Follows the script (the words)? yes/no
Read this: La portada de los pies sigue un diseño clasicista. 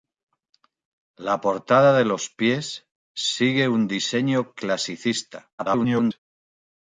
no